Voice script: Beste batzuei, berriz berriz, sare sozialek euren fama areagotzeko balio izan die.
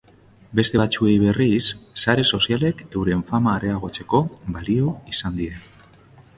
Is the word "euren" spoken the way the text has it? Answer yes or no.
yes